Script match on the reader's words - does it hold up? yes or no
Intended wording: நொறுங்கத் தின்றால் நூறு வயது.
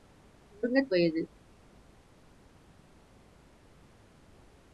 no